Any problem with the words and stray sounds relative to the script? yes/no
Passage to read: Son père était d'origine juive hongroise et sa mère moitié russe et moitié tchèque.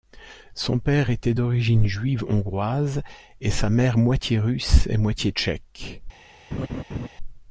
yes